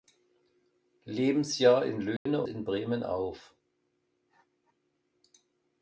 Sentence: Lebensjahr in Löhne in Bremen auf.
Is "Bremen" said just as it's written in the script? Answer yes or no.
yes